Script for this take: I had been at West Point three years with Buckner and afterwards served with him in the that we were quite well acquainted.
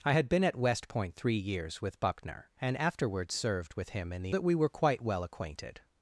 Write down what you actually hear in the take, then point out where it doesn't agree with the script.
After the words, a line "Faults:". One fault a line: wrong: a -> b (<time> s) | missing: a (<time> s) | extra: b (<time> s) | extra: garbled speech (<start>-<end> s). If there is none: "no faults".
I had been at West Point three years with Buckner and afterwards served with him in the that we were quite well acquainted.
Faults:
no faults